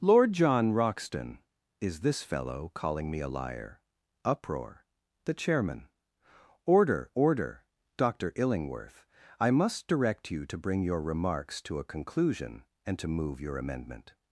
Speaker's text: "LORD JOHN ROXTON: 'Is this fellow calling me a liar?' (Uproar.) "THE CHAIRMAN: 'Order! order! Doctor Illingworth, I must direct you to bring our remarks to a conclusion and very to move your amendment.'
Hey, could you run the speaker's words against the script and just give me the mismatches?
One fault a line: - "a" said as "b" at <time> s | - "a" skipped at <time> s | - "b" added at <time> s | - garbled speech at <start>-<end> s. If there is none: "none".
- "our" said as "your" at 10.8 s
- "very" skipped at 13.0 s